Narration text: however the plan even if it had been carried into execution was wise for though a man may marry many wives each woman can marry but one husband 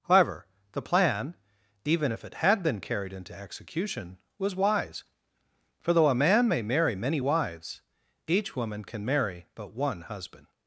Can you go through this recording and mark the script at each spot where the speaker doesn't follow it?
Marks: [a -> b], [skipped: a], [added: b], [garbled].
however the plan even if it had been carried into execution was wise for though a man may marry many wives each woman can marry but one husband